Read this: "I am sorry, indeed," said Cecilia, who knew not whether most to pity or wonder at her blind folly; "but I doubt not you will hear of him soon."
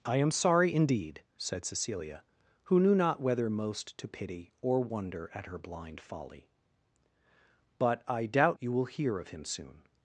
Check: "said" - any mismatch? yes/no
no